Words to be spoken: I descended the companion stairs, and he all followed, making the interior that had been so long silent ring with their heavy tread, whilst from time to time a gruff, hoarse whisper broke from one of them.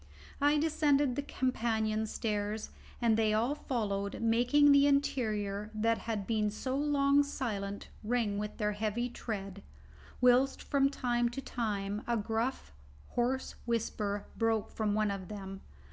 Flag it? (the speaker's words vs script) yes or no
yes